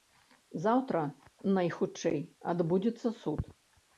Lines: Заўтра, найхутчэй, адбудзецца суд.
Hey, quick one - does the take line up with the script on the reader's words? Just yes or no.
yes